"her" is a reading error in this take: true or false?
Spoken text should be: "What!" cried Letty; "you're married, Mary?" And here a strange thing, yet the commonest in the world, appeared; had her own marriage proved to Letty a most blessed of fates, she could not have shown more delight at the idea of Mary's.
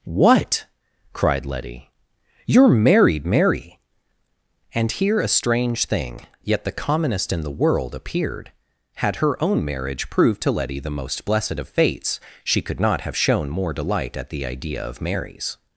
false